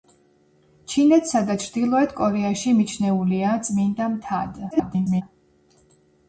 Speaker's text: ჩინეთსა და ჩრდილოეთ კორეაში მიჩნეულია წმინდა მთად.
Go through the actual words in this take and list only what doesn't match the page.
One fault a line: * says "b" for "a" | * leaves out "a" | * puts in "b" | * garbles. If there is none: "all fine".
* garbles